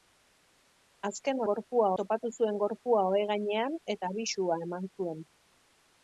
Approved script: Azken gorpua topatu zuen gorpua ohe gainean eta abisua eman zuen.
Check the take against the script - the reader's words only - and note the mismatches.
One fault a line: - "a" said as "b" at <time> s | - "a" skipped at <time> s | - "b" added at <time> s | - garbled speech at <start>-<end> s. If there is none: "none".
none